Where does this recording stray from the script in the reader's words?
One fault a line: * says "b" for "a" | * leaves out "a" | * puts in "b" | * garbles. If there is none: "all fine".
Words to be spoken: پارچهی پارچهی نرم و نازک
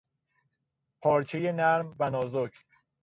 * leaves out "پارچهی"